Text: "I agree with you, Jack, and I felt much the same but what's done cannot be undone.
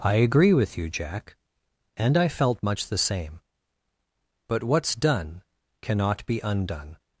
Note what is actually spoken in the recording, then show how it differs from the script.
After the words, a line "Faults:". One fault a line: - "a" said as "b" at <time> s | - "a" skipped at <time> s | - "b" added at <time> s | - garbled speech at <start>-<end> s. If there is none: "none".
"I agree with you, Jack, and I felt much the same but what's done cannot be undone.
Faults:
none